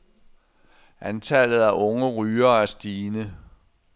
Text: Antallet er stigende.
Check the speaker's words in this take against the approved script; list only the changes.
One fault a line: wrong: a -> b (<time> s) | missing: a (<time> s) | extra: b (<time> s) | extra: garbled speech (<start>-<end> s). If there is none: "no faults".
extra: af unge rygere (1.6 s)